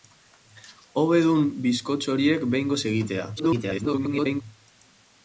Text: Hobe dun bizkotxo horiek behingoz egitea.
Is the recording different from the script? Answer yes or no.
yes